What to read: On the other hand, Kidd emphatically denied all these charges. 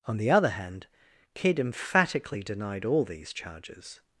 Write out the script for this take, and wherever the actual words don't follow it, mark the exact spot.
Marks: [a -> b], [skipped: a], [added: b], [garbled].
On the other hand, Kidd emphatically denied all these charges.